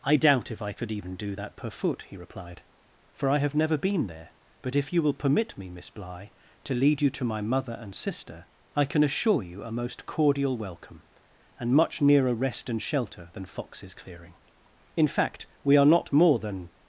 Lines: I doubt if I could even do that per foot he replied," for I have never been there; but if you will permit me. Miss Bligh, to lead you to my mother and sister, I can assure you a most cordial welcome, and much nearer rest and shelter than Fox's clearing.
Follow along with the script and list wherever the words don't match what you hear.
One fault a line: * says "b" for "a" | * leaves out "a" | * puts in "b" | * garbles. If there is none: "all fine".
* puts in "In fact we are not more than"